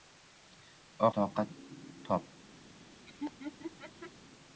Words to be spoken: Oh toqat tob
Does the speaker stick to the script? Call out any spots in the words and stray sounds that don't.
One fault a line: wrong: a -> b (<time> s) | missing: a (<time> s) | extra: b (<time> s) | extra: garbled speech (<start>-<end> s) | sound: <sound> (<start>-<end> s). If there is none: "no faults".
sound: laugh (3.0-4.1 s)